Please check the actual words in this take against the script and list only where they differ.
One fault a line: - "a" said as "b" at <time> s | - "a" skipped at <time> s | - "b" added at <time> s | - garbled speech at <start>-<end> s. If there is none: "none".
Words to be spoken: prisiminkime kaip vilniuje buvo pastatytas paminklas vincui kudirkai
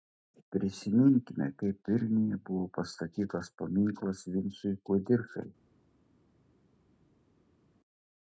none